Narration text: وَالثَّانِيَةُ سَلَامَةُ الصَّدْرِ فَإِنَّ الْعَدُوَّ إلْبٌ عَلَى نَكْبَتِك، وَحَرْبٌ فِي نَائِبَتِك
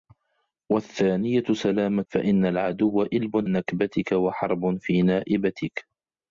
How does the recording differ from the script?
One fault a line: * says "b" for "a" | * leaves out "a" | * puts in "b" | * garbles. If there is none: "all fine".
* leaves out "الصَّدْرِ"
* leaves out "عَلَى"